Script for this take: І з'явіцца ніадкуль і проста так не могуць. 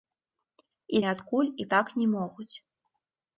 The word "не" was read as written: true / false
true